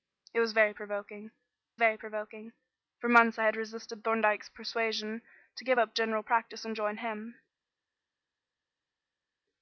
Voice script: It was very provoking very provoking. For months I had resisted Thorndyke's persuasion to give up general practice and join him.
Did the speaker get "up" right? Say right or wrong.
right